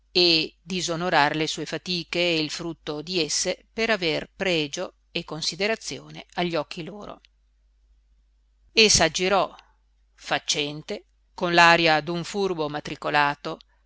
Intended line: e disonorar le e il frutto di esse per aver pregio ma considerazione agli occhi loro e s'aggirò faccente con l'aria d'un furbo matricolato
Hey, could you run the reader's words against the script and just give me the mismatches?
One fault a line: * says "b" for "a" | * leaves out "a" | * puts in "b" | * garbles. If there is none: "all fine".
* puts in "sue fatiche"
* says "e" for "ma"